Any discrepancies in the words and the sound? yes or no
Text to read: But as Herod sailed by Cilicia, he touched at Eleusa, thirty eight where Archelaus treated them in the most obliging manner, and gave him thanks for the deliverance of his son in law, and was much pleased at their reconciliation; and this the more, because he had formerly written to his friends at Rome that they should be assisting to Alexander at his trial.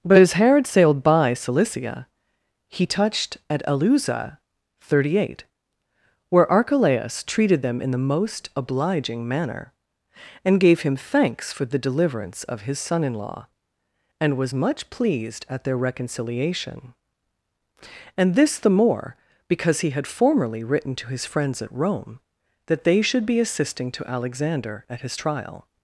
no